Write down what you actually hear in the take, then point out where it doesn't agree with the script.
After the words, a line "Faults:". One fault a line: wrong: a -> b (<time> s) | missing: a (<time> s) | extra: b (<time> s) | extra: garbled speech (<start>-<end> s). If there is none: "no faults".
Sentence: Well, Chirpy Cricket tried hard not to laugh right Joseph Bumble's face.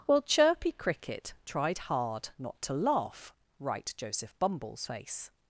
Well, Chirpy Cricket tried hard not to laugh right Joseph Bumble's face.
Faults:
no faults